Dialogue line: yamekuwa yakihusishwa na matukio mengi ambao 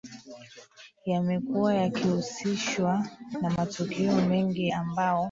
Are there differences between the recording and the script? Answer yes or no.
no